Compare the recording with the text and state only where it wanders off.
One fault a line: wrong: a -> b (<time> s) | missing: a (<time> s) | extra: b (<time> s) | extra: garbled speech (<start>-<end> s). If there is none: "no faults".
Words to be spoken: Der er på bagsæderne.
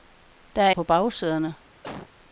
no faults